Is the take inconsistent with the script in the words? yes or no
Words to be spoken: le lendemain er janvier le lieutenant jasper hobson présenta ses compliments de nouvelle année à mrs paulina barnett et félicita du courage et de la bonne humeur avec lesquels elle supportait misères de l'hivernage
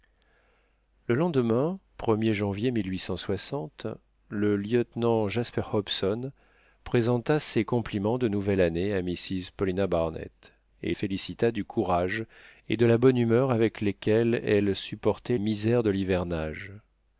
no